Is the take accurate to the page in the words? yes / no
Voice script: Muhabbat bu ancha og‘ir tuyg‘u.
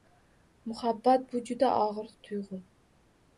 no